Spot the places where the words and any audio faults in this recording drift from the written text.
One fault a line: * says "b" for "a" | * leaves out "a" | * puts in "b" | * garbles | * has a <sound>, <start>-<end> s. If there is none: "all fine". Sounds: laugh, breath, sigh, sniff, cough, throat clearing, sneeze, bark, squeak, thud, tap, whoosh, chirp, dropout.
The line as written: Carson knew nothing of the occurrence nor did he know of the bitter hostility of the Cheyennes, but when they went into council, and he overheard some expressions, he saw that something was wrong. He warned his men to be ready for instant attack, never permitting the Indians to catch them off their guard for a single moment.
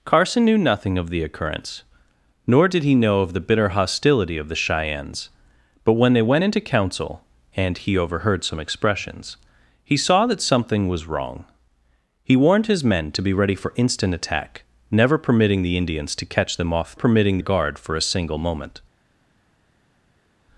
* says "permitting" for "their"